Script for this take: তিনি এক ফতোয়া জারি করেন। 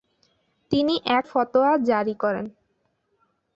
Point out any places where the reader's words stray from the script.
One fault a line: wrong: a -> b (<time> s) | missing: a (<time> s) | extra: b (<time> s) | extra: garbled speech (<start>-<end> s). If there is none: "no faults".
no faults